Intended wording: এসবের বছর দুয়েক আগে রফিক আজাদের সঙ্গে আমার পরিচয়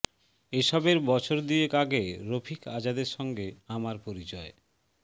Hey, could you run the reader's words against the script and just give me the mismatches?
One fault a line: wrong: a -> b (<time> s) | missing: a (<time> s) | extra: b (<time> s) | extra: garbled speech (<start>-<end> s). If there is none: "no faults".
no faults